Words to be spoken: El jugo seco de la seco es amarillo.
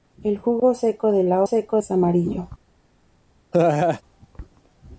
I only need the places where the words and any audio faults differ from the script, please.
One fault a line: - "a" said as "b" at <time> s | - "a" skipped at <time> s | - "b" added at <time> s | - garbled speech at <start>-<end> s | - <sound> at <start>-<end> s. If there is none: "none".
- laugh at 3.5-4.0 s